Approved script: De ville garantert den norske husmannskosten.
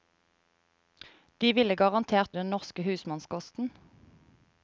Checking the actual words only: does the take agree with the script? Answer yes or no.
yes